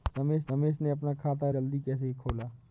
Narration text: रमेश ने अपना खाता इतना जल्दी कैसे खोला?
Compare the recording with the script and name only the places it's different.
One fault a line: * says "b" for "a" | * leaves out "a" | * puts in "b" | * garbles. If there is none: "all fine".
* puts in "रमेश"
* leaves out "इतना"